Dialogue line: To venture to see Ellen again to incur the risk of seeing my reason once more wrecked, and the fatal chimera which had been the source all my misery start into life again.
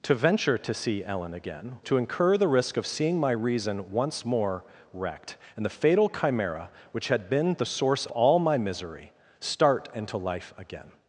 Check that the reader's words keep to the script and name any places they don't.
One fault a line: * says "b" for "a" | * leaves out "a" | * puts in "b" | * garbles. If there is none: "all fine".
all fine